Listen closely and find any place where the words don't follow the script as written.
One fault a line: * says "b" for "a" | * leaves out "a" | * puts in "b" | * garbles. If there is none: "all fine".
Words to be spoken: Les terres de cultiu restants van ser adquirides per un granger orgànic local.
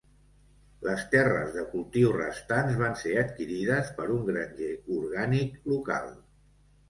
all fine